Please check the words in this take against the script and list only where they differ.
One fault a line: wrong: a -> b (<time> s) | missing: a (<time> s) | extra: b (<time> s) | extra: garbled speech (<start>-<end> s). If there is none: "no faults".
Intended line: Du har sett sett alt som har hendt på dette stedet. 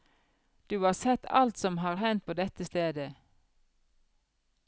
missing: sett (1.2 s)